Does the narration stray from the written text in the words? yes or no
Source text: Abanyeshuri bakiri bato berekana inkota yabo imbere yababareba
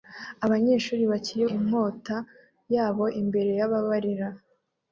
yes